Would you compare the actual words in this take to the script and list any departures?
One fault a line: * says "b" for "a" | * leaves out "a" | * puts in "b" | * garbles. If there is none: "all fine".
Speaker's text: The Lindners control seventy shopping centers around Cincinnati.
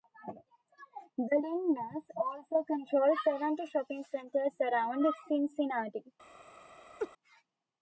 * puts in "also"